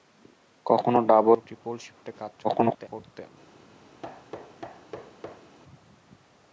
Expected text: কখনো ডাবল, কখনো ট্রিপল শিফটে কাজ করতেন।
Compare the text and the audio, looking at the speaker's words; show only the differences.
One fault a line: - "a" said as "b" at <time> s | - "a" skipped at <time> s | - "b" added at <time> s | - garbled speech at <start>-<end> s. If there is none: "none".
- "কখনো" skipped at 1.4 s
- garbled speech at 2.4-2.9 s